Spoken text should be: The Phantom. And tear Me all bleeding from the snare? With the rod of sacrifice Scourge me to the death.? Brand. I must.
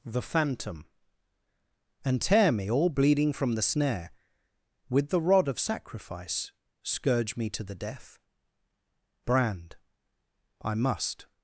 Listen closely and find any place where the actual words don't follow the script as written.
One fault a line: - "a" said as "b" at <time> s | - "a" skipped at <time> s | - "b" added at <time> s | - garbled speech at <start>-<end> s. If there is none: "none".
none